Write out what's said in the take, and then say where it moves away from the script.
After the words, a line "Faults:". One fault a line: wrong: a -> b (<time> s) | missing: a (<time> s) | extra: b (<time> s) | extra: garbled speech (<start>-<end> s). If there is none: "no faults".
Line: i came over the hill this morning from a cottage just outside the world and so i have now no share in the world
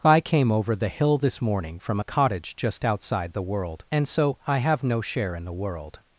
i came over the hill this morning from a cottage just outside the world and so i have no share in the world
Faults:
missing: now (4.8 s)